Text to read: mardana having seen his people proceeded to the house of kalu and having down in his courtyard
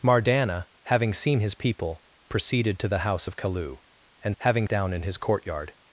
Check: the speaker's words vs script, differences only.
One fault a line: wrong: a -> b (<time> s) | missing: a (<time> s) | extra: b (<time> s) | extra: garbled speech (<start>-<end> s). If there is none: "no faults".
no faults